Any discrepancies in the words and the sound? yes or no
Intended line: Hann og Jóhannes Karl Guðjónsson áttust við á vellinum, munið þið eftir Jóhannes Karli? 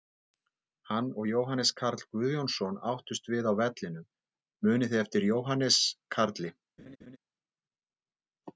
yes